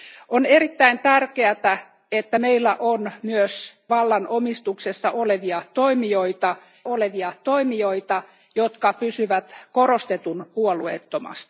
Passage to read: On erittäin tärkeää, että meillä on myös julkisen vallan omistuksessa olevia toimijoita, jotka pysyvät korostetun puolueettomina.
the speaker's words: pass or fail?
fail